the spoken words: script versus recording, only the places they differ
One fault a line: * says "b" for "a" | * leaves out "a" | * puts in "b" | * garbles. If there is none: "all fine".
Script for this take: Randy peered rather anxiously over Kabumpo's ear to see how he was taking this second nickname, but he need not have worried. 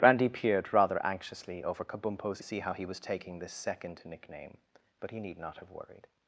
* leaves out "ear to"